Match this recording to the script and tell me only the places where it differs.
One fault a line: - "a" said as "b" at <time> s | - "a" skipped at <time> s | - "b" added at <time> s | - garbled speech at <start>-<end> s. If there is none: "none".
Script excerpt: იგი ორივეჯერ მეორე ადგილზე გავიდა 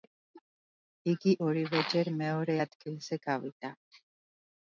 none